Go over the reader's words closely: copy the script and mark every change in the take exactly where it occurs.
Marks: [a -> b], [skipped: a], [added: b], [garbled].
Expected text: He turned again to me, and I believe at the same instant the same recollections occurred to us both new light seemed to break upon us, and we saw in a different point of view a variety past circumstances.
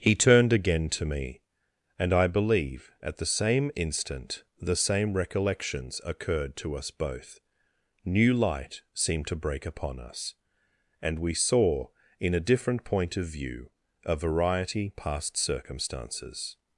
He turned again to me, and I believe at the same instant the same recollections occurred to us both new light seemed to break upon us, and we saw in a different point of view a variety past circumstances.